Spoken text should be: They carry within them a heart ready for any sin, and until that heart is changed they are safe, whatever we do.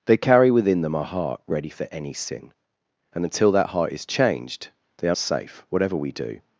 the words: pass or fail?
pass